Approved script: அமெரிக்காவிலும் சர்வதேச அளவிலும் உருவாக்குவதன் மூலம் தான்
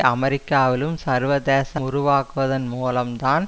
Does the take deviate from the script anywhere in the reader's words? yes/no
yes